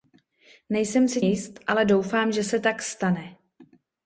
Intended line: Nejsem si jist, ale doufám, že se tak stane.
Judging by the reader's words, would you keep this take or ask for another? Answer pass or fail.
pass